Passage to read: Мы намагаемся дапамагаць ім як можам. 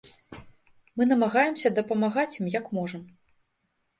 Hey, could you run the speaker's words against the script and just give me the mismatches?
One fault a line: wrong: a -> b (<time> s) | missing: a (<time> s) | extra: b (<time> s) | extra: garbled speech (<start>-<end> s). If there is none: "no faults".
no faults